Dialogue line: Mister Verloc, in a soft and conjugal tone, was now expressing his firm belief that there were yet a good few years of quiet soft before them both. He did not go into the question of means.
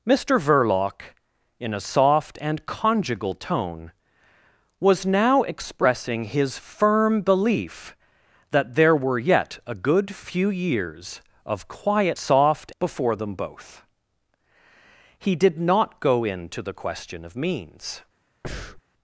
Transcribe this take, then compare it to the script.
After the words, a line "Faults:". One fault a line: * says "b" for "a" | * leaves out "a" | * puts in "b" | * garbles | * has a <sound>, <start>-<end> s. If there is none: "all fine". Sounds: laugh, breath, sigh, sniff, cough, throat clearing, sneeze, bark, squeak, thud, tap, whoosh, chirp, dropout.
Mister Verloc, in a soft and conjugal tone, was now expressing his firm belief that there were yet a good few years of quiet soft before them both. He did not go into the question of means.
Faults:
* has a breath, 18.4-18.8 s